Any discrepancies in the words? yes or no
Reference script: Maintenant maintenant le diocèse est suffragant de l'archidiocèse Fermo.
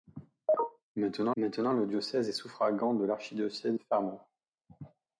no